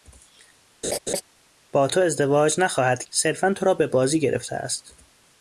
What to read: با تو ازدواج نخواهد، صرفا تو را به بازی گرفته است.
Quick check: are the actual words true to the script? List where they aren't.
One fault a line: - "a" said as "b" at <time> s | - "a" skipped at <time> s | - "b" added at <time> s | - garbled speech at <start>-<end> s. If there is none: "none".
none